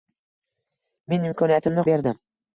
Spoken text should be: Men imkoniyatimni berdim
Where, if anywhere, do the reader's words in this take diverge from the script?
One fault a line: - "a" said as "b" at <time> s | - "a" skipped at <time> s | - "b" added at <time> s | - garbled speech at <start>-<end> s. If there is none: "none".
none